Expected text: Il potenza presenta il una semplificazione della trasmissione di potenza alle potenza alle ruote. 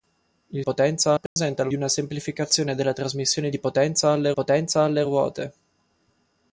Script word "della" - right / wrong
right